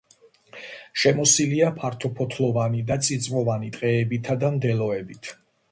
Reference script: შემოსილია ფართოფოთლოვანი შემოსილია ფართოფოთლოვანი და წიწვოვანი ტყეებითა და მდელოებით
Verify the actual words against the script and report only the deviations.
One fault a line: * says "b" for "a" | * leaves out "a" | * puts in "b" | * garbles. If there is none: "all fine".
* leaves out "შემოსილია ფართოფოთლოვანი"